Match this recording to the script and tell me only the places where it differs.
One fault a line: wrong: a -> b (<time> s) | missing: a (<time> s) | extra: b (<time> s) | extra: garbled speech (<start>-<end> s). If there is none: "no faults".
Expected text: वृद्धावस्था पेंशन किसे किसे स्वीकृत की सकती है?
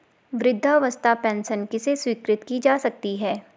missing: किसे (1.9 s)
extra: जा (2.6 s)